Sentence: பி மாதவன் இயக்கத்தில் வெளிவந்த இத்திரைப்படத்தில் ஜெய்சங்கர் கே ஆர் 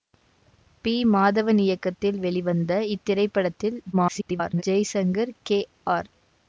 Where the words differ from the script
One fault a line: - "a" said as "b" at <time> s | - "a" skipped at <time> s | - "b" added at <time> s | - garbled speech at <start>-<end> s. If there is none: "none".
- garbled speech at 3.9-4.6 s